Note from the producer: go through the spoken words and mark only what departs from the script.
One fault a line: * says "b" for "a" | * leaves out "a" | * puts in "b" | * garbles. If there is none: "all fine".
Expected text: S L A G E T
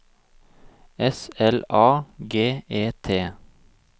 all fine